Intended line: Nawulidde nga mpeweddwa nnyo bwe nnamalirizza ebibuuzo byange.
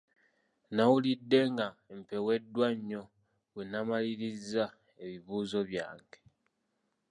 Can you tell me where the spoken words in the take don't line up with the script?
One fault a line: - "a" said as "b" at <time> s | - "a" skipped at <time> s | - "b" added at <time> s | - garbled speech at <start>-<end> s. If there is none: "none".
none